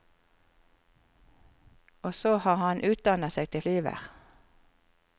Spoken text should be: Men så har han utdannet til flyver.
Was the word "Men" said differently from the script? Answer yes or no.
yes